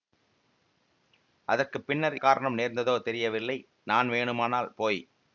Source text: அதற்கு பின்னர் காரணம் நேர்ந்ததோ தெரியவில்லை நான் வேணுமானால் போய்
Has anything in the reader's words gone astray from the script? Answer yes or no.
no